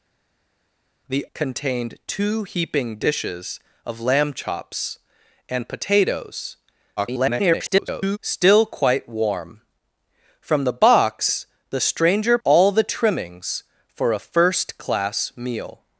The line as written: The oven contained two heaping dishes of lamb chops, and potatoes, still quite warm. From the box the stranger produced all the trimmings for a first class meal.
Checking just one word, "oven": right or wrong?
wrong